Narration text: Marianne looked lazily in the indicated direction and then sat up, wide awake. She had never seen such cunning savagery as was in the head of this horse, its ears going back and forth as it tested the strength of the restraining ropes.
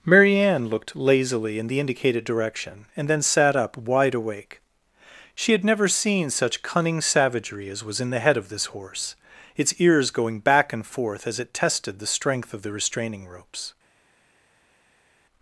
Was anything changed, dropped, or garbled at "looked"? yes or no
no